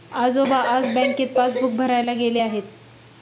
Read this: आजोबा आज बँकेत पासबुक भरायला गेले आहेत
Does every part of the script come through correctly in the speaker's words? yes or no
yes